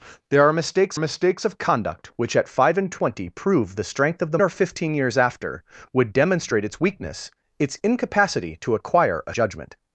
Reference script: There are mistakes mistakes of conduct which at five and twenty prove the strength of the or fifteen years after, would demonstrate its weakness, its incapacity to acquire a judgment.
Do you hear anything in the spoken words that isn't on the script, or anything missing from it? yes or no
no